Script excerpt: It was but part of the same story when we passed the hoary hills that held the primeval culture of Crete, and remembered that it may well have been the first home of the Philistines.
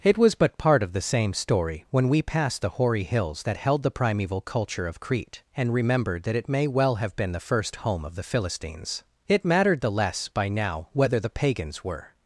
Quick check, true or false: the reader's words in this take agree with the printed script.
false